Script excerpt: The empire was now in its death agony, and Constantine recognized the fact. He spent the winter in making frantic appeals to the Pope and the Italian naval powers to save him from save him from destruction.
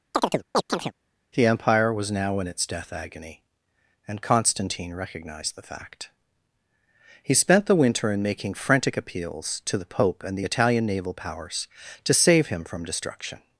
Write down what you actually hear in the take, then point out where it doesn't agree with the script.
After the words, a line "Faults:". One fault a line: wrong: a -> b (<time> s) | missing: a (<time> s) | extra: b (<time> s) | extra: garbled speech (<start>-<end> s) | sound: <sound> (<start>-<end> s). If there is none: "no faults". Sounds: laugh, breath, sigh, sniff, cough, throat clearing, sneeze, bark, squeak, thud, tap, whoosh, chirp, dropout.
The empire was now in its death agony, and Constantine recognized the fact. He spent the winter in making frantic appeals to the Pope and the Italian naval powers to save him from destruction.
Faults:
sound: chirp (0.1-0.9 s)
missing: save him from (12.8 s)